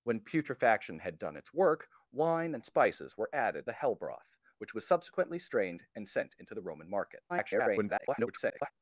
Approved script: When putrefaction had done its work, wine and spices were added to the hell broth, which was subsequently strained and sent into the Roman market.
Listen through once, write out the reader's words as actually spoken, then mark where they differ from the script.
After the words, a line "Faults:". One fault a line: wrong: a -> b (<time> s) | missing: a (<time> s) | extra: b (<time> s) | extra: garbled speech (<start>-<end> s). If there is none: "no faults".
When putrefaction had done its work, wine and spices were added the hell broth, which was subsequently strained and sent into the Roman market. [garbled]
Faults:
missing: to (3.7 s)
extra: garbled speech (7.3-8.7 s)